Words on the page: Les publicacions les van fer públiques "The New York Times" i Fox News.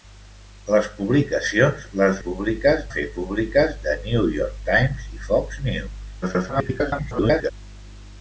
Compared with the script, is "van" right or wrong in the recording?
wrong